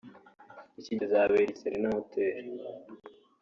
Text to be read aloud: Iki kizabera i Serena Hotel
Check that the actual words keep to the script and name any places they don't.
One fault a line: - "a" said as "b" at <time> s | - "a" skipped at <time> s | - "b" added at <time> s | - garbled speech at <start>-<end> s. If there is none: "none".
none